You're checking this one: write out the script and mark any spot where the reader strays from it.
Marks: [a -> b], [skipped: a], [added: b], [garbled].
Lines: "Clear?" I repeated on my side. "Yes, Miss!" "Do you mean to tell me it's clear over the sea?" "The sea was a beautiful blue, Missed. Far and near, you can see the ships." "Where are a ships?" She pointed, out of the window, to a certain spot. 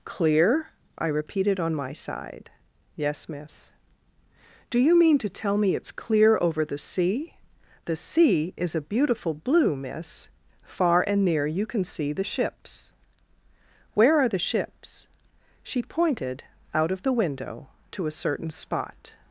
"Clear?" I repeated on my side. "Yes, Miss!" "Do you mean to tell me it's clear over the sea?" "The sea [was -> is] a beautiful blue, [Missed. -> Miss] Far and near, you can see the ships." "Where are [a -> the] ships?" She pointed, out of the window, to a certain spot.